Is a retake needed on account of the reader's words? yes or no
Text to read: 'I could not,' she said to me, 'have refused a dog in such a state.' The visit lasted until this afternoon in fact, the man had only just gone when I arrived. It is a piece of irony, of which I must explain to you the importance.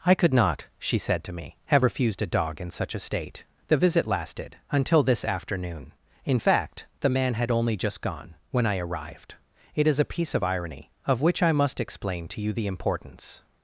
no